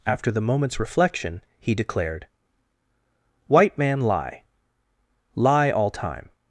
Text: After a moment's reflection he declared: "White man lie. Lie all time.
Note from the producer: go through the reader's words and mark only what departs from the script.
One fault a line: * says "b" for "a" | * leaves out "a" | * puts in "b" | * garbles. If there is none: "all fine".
* says "the" for "a"